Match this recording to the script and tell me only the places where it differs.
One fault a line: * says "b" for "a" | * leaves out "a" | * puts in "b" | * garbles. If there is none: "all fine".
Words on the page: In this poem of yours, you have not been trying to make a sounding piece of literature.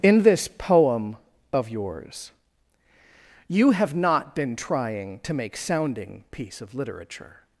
* leaves out "a"